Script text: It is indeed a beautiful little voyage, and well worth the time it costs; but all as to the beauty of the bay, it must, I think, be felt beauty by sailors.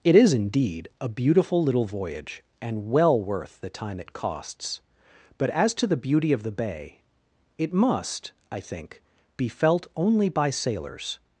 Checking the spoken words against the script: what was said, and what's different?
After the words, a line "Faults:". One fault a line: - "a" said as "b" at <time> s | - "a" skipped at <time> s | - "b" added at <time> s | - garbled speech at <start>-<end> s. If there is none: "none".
It is indeed a beautiful little voyage, and well worth the time it costs; but as to the beauty of the bay, it must, I think, be felt only by sailors.
Faults:
- "all" skipped at 5.5 s
- "beauty" said as "only" at 9.9 s